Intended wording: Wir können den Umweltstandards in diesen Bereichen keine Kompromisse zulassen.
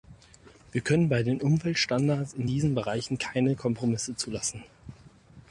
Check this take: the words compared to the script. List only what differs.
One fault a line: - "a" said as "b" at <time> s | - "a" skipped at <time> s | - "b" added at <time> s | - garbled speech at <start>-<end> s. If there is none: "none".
- "bei" added at 1.1 s